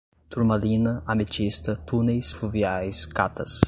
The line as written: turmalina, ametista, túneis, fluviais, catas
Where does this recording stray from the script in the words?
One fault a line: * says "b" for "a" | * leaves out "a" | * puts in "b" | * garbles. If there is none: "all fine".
all fine